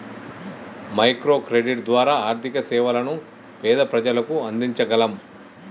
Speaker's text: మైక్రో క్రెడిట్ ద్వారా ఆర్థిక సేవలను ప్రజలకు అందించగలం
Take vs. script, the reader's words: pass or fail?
fail